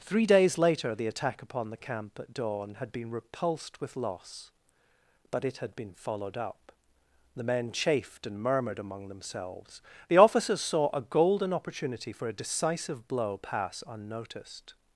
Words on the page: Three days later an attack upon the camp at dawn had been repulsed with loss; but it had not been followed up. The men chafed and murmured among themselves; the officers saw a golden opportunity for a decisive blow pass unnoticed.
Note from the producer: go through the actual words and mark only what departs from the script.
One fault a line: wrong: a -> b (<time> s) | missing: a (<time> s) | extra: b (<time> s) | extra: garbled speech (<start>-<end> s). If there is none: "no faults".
wrong: an -> the (0.9 s)
missing: not (5.8 s)